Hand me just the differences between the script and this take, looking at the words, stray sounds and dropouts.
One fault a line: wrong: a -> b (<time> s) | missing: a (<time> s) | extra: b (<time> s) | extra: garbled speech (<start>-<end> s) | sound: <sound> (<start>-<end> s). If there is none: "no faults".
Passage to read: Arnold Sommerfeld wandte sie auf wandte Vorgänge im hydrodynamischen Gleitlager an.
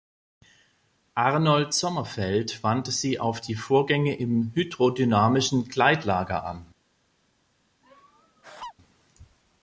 wrong: wandte -> die (3.4 s)
sound: laugh (7.8-8.7 s)